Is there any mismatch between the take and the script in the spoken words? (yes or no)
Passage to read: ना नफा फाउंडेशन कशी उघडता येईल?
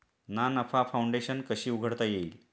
no